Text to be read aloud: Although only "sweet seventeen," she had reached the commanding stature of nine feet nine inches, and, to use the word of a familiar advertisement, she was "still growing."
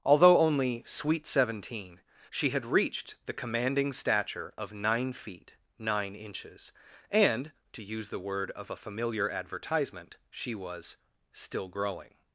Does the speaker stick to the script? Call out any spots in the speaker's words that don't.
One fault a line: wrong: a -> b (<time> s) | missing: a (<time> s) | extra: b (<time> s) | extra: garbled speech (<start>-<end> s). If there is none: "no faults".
no faults